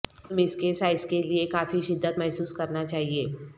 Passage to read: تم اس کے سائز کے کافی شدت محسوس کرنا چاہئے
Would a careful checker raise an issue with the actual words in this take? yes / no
yes